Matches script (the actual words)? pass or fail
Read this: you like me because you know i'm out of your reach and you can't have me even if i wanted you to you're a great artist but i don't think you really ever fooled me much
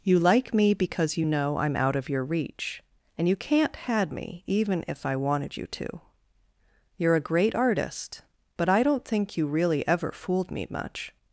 fail